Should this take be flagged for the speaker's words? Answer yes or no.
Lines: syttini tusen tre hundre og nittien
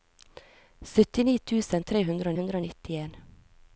yes